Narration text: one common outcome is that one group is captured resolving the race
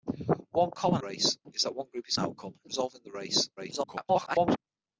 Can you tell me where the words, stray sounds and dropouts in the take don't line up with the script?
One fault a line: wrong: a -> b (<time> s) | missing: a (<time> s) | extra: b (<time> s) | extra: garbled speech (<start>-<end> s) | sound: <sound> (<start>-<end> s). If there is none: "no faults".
wrong: outcome -> race (1.0 s)
wrong: captured -> outcome (2.2 s)
extra: garbled speech (3.6-4.6 s)